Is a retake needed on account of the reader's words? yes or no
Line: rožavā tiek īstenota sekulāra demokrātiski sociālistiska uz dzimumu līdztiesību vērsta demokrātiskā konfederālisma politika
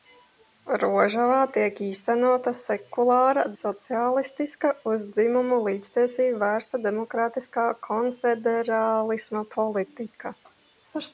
yes